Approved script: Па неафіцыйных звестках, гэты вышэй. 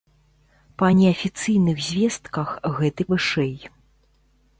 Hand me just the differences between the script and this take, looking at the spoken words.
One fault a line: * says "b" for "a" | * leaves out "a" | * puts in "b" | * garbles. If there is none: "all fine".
all fine